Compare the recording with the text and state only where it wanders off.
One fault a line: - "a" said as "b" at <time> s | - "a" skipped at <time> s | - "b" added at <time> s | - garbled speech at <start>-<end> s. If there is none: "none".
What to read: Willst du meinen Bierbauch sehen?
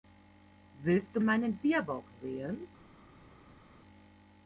none